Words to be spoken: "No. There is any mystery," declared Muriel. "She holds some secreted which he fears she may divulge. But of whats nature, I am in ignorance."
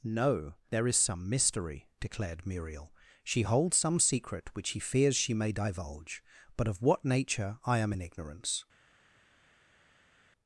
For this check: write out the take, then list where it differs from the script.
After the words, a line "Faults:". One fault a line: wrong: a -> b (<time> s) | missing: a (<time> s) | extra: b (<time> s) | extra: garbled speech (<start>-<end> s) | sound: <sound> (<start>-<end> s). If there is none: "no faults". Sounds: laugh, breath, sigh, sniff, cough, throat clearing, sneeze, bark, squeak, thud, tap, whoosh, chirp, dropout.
"No. There is some mystery," declared Muriel. "She holds some secret which he fears she may divulge. But of what nature, I am in ignorance."
Faults:
wrong: any -> some (1.0 s)
wrong: secreted -> secret (4.0 s)
wrong: whats -> what (6.8 s)